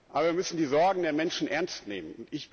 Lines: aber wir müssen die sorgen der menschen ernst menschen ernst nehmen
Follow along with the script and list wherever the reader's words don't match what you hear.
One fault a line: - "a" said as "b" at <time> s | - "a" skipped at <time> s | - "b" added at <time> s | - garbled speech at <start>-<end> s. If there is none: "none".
- "menschen ernst" skipped at 1.9 s